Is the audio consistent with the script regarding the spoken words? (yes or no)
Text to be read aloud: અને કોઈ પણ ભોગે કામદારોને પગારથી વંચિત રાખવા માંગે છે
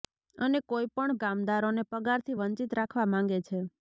no